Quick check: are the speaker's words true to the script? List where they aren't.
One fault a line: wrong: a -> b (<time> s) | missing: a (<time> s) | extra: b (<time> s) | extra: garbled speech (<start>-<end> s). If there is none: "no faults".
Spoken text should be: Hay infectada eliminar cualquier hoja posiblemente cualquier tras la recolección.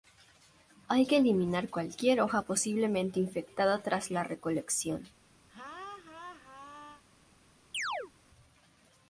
wrong: infectada -> que (1.0 s)
wrong: cualquier -> infectada (3.2 s)